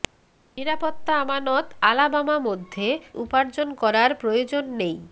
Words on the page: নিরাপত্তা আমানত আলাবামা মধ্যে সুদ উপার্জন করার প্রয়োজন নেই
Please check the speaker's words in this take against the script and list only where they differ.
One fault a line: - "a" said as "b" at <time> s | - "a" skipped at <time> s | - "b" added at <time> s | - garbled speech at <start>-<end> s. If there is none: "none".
- "সুদ" skipped at 2.9 s